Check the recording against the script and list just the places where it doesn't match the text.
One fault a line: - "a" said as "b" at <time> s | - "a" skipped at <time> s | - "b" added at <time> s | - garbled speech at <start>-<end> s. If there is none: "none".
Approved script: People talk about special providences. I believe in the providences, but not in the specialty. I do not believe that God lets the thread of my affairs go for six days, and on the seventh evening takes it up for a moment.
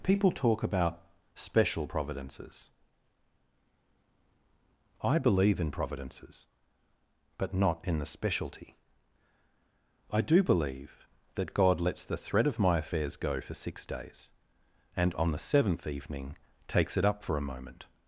- "the" skipped at 5.7 s
- "not" skipped at 10.4 s